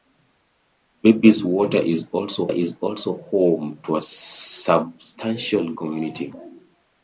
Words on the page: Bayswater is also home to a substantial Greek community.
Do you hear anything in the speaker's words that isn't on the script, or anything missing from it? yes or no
yes